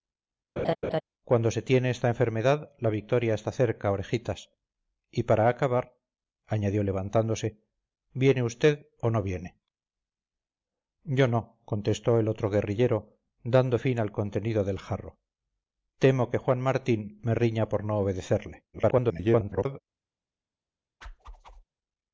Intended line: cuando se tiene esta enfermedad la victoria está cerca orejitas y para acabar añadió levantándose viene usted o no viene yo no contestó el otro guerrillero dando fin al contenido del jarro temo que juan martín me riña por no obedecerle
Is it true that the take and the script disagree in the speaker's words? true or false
true